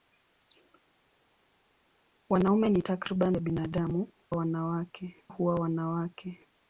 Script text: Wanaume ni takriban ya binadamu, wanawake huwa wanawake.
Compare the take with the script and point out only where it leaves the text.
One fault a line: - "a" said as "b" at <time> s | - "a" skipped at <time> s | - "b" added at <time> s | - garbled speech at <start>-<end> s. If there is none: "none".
none